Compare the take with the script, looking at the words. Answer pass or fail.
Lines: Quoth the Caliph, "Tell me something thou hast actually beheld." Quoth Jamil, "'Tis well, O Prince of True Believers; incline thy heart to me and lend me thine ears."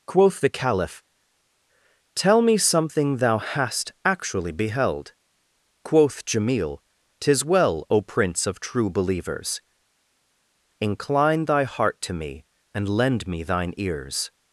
pass